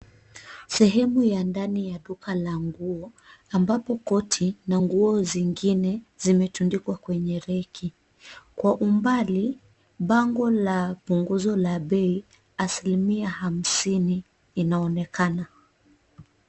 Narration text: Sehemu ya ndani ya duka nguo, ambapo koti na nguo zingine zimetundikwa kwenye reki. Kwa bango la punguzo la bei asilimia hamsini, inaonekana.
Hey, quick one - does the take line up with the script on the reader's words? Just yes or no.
no